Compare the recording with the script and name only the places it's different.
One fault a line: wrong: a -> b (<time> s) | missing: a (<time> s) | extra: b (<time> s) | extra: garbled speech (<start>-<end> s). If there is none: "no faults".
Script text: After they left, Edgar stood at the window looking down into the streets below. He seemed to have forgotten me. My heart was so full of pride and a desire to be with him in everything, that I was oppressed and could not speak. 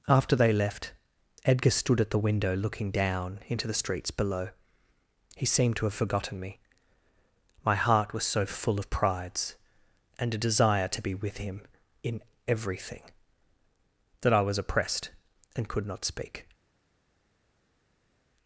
wrong: pride -> prides (8.9 s)